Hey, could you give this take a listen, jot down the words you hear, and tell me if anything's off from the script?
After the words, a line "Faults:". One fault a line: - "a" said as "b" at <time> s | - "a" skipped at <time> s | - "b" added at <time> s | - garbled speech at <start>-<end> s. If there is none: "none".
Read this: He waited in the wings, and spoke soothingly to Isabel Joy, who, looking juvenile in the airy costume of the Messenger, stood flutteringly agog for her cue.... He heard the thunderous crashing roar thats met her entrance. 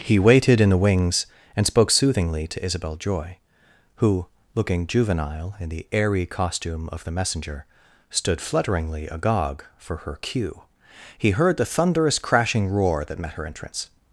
He waited in the wings, and spoke soothingly to Isabel Joy, who, looking juvenile in the airy costume of the Messenger, stood flutteringly agog for her cue.... He heard the thunderous crashing roar that met her entrance.
Faults:
- "thats" said as "that" at 13.1 s